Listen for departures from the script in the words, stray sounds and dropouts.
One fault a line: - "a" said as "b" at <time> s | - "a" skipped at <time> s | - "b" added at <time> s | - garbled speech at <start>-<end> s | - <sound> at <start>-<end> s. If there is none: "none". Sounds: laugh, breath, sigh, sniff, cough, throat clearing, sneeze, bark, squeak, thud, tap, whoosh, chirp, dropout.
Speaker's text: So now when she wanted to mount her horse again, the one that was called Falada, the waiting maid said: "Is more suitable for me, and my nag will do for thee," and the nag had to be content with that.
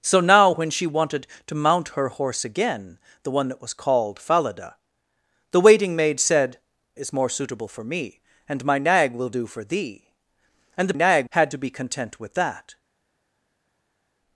none